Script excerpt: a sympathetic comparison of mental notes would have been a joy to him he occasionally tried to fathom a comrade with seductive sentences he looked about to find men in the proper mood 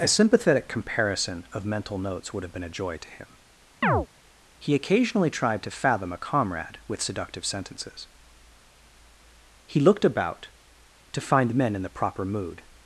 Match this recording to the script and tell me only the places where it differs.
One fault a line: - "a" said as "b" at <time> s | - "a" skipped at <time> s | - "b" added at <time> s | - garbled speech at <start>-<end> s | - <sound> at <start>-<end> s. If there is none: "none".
- chirp at 3.8-4.1 s